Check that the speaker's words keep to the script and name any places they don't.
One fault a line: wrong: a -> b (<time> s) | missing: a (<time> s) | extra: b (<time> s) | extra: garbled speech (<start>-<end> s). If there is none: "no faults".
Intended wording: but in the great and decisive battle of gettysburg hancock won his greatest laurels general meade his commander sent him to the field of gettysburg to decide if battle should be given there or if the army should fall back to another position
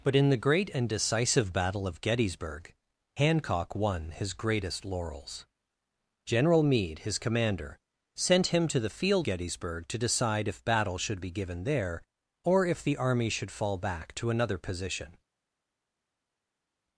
missing: of (9.3 s)